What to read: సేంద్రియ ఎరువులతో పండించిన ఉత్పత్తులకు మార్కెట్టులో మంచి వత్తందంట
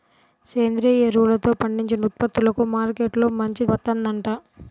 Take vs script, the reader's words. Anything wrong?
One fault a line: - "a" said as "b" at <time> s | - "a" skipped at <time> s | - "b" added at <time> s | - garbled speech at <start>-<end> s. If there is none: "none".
none